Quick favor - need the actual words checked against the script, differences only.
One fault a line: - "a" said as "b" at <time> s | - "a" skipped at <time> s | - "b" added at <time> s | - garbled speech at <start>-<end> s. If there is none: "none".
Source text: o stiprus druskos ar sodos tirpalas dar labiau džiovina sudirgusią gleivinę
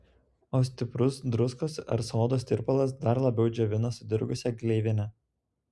none